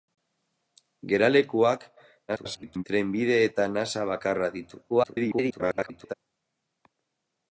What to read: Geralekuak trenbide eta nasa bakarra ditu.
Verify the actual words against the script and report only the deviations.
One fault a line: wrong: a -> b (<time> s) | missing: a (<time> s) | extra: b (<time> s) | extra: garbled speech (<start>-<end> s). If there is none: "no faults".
extra: garbled speech (2.3-2.8 s)
extra: garbled speech (4.9-6.1 s)